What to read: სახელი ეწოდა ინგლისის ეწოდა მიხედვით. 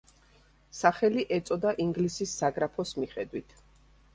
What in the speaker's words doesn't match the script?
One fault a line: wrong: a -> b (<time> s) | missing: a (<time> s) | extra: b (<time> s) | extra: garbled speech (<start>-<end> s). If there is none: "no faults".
wrong: ეწოდა -> საგრაფოს (2.4 s)